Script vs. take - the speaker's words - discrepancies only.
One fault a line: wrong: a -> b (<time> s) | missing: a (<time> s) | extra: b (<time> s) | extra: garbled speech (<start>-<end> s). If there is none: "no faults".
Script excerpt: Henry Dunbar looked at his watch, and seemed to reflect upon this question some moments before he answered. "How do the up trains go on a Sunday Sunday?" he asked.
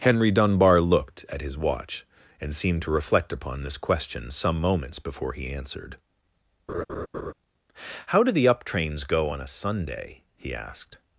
missing: Sunday (10.2 s)